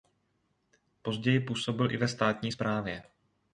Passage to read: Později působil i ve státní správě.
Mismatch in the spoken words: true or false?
false